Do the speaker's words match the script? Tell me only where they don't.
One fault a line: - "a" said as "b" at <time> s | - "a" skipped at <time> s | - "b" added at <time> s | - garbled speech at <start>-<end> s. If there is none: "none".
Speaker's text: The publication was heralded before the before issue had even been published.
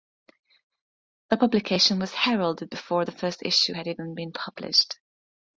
- "before" said as "first" at 3.1 s